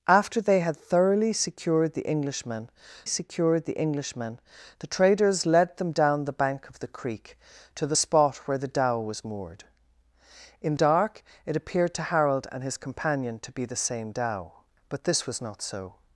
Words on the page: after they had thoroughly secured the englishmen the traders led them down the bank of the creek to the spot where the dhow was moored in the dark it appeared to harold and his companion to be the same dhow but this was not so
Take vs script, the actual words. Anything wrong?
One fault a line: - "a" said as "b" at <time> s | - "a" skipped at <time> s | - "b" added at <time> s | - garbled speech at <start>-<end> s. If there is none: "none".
- "secured" added at 3.0 s
- "englishmen the" added at 3.8 s
- "the" skipped at 10.8 s